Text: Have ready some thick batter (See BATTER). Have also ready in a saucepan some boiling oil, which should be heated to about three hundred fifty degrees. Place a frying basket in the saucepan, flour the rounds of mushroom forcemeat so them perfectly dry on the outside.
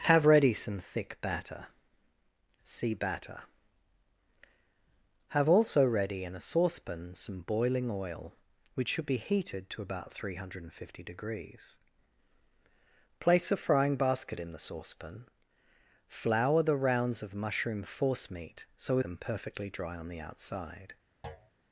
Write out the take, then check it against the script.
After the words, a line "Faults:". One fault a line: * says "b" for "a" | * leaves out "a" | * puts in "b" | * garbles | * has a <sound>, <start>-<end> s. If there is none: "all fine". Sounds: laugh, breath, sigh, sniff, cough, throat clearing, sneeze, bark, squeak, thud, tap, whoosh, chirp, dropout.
Have ready some thick batter (See BATTER). Have also ready in a saucepan some boiling oil, which should be heated to about three hundred fifty degrees. Place a frying basket in the saucepan, flour the rounds of mushroom forcemeat so them perfectly dry on the outside.
Faults:
* has a thud, 21.2-21.5 s